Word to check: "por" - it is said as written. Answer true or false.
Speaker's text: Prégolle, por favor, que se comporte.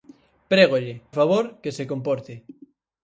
false